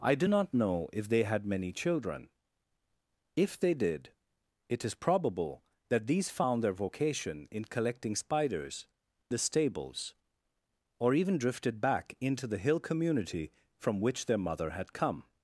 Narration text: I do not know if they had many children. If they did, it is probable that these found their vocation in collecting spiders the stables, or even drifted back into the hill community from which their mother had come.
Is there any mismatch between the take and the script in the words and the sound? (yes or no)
no